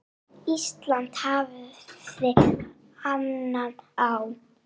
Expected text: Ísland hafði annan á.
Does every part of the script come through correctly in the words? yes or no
yes